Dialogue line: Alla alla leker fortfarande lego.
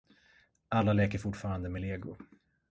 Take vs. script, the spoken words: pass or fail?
fail